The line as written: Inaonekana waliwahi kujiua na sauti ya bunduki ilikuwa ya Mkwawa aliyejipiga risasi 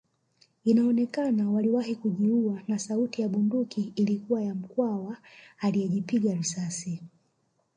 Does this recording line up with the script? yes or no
yes